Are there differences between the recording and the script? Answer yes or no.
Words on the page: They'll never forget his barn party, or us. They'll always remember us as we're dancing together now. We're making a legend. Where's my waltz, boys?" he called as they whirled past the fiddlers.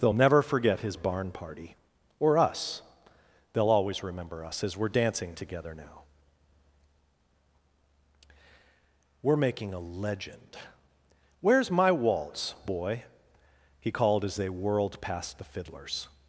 yes